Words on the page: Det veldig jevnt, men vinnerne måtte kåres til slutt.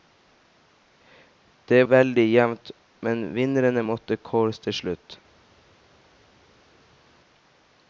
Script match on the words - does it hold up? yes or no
yes